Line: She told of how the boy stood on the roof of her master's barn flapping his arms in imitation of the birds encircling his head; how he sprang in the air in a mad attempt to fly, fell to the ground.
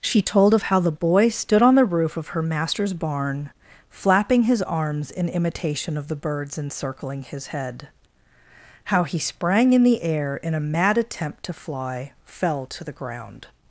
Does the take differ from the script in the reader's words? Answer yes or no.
no